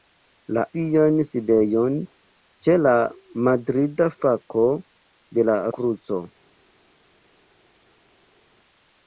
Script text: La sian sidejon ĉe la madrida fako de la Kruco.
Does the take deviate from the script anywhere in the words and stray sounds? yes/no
no